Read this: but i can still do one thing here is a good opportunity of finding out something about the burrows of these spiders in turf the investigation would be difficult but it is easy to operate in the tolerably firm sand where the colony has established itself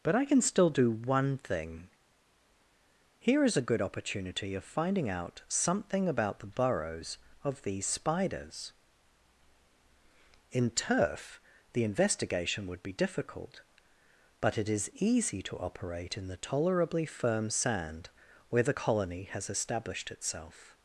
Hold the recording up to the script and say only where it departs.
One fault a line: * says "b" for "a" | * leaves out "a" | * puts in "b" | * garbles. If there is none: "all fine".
all fine